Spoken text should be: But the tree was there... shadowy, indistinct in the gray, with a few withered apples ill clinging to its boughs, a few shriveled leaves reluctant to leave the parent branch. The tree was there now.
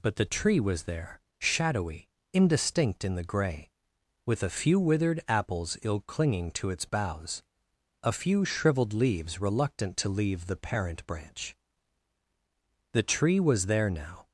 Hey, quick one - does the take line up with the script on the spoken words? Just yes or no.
yes